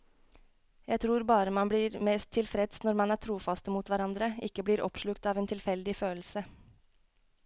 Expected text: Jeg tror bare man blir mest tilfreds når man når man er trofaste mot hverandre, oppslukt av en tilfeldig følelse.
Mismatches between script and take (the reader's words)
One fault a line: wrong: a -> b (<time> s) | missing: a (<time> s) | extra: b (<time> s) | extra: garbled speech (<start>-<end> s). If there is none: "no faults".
missing: når man (3.2 s)
extra: ikke blir (4.5 s)